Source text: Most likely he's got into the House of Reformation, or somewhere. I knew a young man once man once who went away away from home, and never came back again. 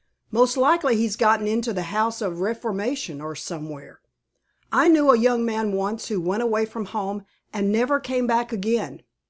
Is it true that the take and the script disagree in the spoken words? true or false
true